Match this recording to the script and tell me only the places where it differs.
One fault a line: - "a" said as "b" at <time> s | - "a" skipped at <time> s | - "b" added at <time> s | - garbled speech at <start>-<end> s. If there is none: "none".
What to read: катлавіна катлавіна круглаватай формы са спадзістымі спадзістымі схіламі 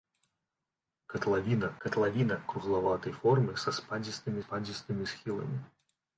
none